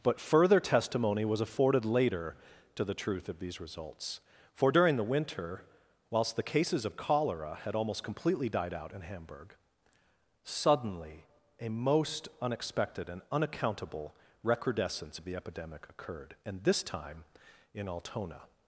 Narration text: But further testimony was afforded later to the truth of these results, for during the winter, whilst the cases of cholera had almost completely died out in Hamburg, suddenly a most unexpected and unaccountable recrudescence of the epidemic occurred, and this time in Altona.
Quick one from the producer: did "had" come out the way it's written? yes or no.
yes